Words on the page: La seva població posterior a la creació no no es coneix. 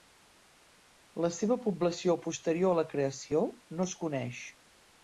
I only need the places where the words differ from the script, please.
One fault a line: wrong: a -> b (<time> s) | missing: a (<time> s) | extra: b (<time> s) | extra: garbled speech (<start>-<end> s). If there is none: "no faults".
missing: no (3.9 s)